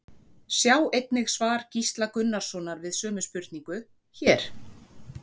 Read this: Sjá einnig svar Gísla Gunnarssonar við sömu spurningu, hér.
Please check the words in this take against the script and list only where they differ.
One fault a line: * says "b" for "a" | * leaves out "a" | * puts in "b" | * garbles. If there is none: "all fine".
all fine